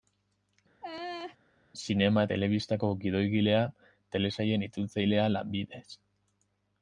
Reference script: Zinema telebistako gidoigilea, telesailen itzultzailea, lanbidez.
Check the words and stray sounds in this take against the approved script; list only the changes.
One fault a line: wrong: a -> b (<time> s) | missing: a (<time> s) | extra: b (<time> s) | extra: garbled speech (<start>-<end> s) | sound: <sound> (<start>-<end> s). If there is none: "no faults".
sound: laugh (0.8-1.4 s)